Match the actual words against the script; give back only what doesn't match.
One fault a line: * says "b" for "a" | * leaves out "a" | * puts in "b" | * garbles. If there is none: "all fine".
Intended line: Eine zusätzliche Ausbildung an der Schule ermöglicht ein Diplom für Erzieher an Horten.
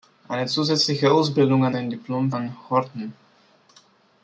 * leaves out "der Schule ermöglicht"
* leaves out "für Erzieher"